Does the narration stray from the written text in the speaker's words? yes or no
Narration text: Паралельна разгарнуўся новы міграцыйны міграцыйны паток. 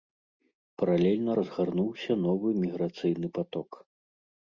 yes